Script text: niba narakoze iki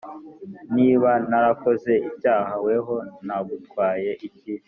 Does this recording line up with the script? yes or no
no